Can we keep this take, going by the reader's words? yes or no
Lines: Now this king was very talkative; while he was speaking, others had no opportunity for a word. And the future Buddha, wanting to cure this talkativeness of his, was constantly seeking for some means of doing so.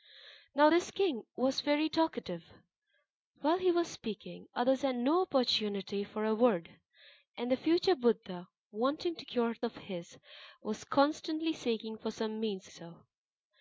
no